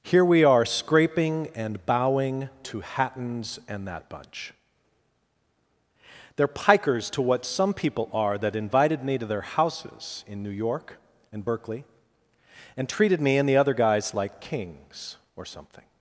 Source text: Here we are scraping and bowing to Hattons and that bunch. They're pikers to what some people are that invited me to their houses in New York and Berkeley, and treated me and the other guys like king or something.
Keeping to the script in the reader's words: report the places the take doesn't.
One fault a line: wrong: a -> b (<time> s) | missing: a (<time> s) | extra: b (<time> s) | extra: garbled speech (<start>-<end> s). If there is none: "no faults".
wrong: king -> kings (14.4 s)